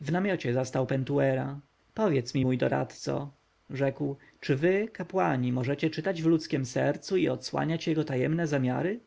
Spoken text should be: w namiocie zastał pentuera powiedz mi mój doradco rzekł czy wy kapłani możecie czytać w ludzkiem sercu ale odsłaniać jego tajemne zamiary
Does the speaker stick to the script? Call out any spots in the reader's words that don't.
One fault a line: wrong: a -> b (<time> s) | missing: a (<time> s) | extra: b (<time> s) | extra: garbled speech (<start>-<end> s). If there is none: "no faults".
wrong: ale -> i (7.2 s)